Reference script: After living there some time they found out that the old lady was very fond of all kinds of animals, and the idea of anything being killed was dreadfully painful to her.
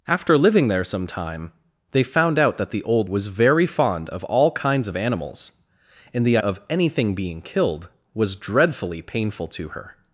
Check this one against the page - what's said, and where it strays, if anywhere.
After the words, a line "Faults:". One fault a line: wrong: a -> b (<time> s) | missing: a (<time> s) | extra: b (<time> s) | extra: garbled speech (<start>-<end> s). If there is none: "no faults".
After living there some time they found out that the old was very fond of all kinds of animals, and the of anything being killed was dreadfully painful to her.
Faults:
missing: lady (3.1 s)
missing: idea (6.4 s)